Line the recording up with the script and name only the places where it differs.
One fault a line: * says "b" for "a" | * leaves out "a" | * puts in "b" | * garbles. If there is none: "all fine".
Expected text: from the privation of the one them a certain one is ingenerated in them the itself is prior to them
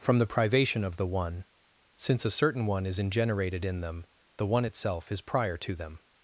* says "since" for "them"
* puts in "one"